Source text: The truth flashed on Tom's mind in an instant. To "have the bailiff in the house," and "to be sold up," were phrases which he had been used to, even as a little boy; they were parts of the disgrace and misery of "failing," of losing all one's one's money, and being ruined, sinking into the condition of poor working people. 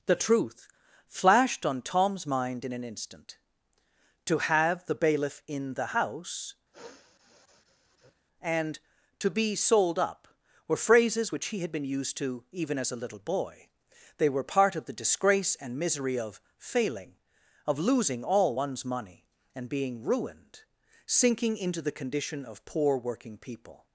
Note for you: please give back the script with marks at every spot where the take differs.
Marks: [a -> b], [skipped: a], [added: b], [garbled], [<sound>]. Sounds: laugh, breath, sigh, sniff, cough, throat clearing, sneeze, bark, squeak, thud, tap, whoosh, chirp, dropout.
The truth flashed on Tom's mind in an instant. To "have the bailiff in the house," [sniff] and "to be sold up," were phrases which he had been used to, even as a little boy; they were [parts -> part] of the disgrace and misery of "failing," of losing all one's [skipped: one's] money, and being ruined, sinking into the condition of poor working people.